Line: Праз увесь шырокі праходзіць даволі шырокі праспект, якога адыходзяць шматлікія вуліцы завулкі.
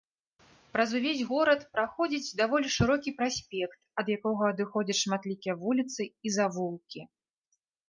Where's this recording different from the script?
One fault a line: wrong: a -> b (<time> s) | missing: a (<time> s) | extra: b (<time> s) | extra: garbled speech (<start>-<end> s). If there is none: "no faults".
wrong: шырокі -> горад (1.3 s)
extra: ад (4.0 s)
extra: і (6.1 s)